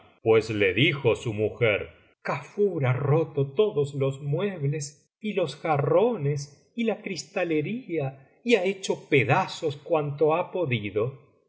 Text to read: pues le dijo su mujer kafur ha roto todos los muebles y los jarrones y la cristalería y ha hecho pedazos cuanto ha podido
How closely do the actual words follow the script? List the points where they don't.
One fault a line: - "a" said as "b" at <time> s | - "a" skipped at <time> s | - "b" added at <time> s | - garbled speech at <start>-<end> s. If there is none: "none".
none